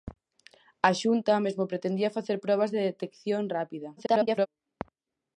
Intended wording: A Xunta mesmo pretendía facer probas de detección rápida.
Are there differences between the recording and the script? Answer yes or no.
yes